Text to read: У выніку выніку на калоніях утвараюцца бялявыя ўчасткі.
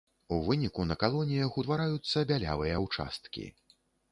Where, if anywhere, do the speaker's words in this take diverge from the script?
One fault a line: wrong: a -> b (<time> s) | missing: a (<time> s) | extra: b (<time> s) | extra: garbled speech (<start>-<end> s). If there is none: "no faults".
missing: выніку (0.8 s)